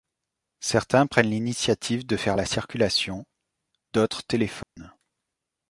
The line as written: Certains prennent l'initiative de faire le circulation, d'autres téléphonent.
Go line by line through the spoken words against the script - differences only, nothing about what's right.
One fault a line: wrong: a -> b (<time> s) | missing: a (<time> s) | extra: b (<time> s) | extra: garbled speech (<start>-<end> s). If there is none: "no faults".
wrong: le -> la (2.4 s)